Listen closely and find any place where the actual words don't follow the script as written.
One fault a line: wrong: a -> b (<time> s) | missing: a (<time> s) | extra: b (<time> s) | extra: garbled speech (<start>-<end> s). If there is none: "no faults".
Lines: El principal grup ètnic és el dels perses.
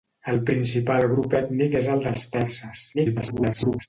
extra: garbled speech (2.9-3.9 s)